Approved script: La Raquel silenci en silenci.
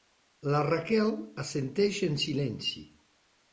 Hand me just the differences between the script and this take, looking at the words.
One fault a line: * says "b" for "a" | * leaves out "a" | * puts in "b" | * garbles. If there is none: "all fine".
* says "assenteix" for "silenci"